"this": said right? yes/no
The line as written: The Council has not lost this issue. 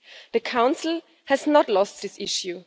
yes